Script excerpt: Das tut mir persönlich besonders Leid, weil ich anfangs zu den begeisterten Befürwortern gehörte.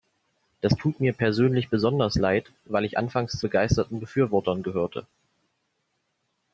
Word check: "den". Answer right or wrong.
wrong